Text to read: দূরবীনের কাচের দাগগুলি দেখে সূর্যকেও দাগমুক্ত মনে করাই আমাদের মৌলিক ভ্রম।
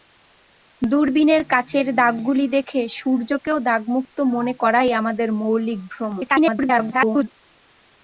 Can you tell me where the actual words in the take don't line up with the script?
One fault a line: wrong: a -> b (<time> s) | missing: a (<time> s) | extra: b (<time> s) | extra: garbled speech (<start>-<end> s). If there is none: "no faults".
extra: garbled speech (6.2-7.3 s)